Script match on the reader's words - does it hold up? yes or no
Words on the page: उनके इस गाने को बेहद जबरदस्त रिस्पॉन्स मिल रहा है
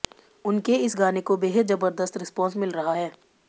yes